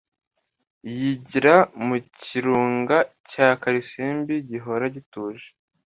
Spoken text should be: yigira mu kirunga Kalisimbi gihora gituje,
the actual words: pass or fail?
fail